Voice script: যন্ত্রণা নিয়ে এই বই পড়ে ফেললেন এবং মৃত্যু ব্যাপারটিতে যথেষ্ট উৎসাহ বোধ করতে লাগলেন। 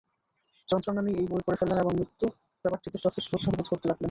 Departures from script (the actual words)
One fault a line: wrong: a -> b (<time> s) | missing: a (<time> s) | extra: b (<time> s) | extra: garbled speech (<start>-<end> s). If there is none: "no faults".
no faults